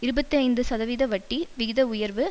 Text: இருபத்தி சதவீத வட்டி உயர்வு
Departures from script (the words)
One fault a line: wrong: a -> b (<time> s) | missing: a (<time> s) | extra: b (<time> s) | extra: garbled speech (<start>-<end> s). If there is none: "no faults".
extra: ஐந்து (0.4 s)
extra: விகித (1.6 s)